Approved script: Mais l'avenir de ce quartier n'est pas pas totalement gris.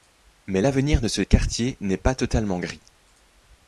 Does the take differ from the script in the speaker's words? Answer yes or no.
yes